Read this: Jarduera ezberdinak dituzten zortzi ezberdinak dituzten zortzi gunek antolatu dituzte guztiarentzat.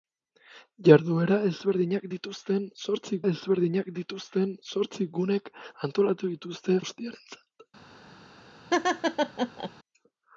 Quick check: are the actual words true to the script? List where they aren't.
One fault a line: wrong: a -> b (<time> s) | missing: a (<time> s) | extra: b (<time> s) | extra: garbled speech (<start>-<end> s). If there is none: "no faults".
no faults